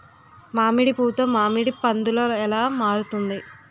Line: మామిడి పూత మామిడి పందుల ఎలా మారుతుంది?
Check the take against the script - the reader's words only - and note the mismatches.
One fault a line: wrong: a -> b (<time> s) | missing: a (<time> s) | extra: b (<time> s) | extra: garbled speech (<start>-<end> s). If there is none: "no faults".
no faults